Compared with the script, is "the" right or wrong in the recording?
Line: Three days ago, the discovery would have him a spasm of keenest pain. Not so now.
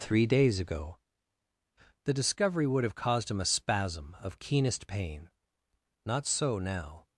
right